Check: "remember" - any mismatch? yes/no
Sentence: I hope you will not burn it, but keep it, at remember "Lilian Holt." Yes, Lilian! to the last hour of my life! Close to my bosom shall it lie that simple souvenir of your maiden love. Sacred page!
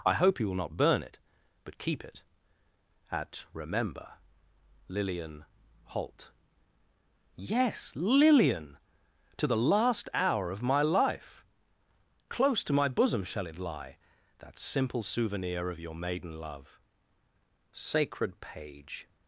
no